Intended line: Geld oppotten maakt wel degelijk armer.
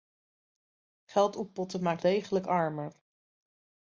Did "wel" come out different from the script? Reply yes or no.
yes